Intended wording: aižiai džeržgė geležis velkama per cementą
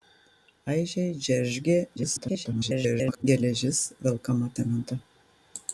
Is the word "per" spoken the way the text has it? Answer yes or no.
no